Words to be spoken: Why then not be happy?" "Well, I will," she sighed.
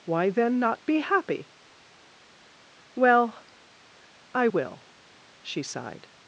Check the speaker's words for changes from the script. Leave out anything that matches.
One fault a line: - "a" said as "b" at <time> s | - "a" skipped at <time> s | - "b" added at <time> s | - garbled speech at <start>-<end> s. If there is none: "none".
none